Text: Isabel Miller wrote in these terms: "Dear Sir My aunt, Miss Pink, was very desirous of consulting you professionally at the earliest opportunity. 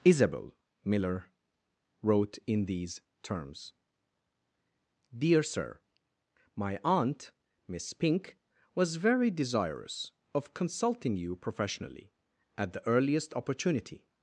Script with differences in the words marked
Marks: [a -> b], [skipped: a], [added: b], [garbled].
Isabel Miller wrote in these terms: "Dear Sir My aunt, Miss Pink, was very desirous of consulting you professionally at the earliest opportunity.